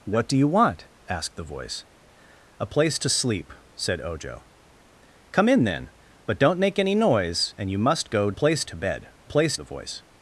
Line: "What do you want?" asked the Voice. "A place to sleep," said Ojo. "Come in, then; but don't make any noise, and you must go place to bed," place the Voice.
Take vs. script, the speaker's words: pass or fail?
pass